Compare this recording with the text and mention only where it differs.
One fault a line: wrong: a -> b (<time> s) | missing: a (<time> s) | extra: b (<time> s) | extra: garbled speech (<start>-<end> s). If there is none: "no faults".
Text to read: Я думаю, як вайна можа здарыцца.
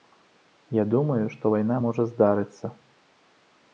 wrong: як -> што (1.3 s)